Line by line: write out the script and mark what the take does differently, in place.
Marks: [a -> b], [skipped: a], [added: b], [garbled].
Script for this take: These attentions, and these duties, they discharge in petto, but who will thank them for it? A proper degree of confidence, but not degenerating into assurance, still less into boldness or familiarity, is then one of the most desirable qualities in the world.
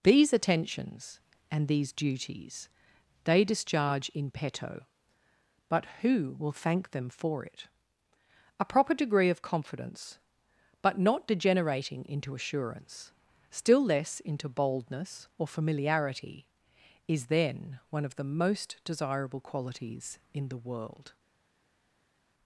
These attentions, and these duties, they discharge in petto, but who will thank them for it? A proper degree of confidence, but not degenerating into assurance, still less into boldness or familiarity, is then one of the most desirable qualities in the world.